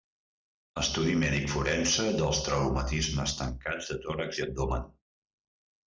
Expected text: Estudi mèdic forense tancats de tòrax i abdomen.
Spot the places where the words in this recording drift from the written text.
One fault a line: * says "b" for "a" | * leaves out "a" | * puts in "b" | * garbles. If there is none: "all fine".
* puts in "dels traumatismes"